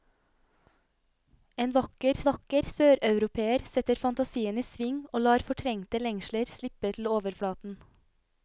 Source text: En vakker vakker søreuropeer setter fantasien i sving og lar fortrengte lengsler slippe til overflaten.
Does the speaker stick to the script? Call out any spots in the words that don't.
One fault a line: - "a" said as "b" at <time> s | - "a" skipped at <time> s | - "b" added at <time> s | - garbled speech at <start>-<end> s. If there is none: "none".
none